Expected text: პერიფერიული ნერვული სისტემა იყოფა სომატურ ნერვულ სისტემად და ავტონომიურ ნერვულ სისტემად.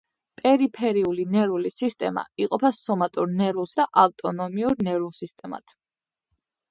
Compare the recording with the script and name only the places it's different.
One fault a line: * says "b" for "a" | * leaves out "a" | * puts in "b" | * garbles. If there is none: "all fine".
* leaves out "სისტემად"